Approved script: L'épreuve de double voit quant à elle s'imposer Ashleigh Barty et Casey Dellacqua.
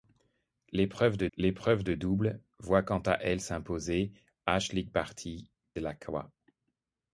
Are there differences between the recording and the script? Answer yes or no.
yes